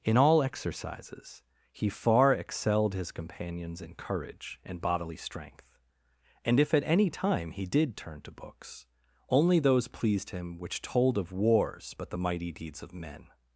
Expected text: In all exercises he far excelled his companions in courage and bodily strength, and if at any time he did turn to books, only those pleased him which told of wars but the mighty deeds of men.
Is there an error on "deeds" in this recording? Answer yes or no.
no